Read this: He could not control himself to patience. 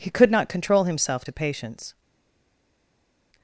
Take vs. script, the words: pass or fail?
pass